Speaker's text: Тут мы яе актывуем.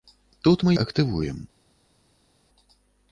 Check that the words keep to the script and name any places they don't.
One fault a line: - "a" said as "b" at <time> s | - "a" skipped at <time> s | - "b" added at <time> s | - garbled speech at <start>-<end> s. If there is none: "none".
- "яе" skipped at 0.7 s